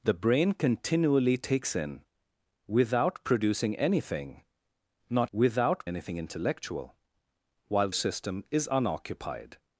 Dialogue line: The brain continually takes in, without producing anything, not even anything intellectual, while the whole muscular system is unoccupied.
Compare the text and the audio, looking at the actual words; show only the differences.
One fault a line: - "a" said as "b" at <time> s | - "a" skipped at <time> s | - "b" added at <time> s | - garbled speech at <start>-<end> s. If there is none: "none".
- "even" said as "without" at 5.3 s
- "the whole muscular" skipped at 7.9 s